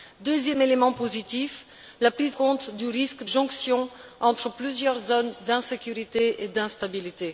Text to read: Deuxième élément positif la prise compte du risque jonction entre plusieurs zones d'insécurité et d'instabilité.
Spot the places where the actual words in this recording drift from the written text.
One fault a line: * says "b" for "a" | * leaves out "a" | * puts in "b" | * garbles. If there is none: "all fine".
all fine